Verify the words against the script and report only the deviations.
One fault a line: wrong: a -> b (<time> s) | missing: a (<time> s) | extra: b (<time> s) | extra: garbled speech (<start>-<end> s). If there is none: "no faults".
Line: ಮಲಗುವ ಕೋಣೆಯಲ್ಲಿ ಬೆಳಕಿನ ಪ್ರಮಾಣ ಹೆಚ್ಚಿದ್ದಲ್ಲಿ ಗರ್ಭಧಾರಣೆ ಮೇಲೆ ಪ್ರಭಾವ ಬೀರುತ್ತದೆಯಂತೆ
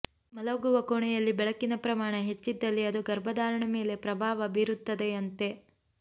extra: ಅದು (2.9 s)